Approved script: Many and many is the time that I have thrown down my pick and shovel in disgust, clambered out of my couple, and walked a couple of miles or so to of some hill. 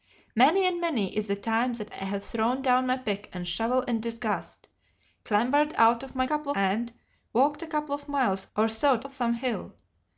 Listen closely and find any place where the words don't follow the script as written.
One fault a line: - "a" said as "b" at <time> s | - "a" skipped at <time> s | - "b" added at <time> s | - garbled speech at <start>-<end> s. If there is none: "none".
none